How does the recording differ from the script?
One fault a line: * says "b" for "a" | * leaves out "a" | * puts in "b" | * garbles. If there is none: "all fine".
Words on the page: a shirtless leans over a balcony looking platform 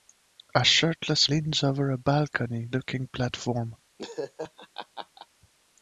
all fine